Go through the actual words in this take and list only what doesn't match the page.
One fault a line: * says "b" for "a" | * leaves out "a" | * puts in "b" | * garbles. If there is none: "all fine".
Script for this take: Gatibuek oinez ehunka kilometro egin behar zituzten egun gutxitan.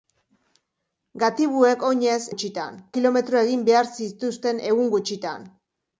* says "gutxitan" for "ehunka"